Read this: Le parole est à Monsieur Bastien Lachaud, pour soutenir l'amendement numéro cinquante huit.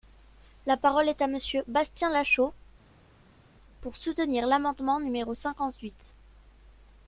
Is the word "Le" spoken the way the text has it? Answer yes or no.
no